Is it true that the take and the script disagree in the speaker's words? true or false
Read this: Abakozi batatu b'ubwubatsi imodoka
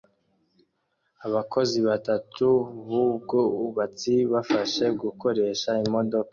true